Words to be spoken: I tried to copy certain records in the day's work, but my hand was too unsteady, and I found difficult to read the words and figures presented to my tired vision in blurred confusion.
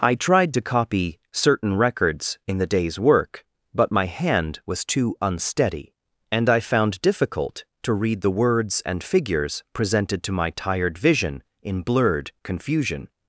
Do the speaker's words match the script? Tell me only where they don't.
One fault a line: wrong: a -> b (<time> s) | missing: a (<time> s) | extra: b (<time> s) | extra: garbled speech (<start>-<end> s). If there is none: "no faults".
no faults